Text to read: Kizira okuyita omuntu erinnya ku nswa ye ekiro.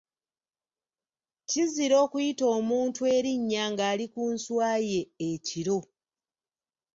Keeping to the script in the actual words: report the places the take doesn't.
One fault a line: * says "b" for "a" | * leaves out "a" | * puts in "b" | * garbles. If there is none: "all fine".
* puts in "ng'ali"